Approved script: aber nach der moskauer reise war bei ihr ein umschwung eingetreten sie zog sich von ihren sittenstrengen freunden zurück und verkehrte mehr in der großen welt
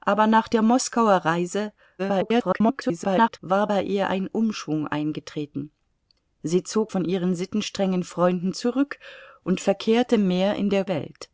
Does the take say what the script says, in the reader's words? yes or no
no